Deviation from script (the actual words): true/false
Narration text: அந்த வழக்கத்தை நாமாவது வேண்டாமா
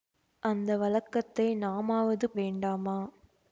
false